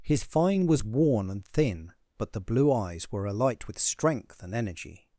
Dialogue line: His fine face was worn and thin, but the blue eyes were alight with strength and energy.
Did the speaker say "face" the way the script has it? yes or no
no